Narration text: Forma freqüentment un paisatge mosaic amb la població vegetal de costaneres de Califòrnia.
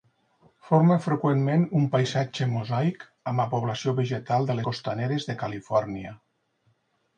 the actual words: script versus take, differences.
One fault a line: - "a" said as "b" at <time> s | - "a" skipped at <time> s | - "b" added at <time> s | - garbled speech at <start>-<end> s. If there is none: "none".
none